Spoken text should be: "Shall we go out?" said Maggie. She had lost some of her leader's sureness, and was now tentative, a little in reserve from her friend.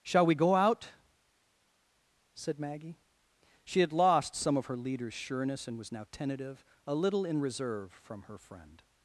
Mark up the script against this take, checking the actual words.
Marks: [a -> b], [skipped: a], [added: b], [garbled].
"Shall we go out?" said Maggie. She had lost some of her leader's sureness, and was now tentative, a little in reserve from her friend.